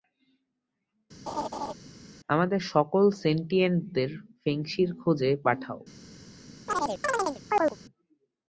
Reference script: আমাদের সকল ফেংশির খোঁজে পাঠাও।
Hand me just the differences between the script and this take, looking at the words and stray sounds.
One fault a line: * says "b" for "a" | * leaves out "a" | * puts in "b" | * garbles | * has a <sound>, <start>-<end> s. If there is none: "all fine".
* has a laugh, 1.3-1.7 s
* puts in "সেন্টিয়েন্টদের"
* has a chirp, 6.7-7.8 s